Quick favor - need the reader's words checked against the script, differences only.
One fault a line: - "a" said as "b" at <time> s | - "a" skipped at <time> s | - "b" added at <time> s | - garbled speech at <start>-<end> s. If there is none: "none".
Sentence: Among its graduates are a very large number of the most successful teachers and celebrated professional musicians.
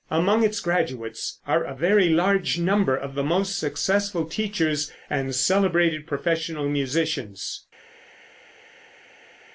none